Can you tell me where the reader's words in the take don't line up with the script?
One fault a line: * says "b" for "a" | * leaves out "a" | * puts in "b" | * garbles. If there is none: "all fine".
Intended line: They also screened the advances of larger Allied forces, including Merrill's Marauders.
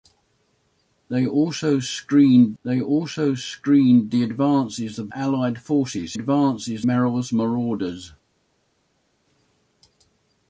* puts in "they also screened"
* leaves out "larger"
* says "advances" for "including"